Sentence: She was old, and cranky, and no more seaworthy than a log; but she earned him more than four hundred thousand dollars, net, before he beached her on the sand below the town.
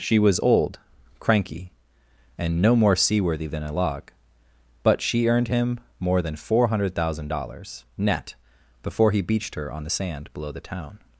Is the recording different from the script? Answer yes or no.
yes